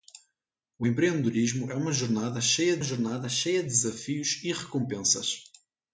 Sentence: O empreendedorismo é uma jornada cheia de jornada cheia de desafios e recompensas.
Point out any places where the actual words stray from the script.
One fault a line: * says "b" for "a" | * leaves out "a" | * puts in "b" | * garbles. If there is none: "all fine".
all fine